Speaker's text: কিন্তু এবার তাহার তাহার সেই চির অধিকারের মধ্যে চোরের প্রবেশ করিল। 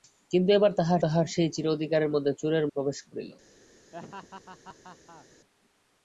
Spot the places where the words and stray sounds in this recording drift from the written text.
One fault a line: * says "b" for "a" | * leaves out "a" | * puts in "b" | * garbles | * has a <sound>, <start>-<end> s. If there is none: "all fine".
* has a laugh, 3.9-5.3 s